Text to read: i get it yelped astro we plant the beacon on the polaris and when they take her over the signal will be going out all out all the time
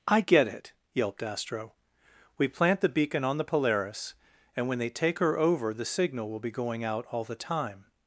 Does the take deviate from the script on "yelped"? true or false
false